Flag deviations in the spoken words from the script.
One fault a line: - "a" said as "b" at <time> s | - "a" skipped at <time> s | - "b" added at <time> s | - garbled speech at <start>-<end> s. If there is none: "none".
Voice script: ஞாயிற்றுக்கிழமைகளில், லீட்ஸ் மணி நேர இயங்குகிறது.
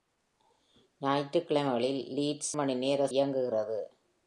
none